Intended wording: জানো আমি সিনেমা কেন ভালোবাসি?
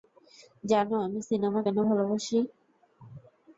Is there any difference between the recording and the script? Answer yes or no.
no